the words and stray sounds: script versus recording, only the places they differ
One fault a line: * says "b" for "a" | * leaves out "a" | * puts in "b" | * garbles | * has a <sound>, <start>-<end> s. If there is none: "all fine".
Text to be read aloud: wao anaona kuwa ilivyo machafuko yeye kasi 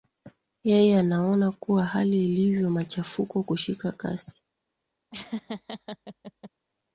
* says "yeye" for "wao"
* puts in "hali"
* says "kushika" for "yeye"
* has a laugh, 5.1-6.5 s